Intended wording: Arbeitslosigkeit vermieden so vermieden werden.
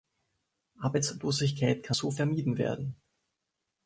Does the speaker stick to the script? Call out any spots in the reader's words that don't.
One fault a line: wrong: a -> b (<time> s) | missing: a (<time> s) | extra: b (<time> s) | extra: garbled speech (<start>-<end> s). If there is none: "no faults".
wrong: vermieden -> kann (1.8 s)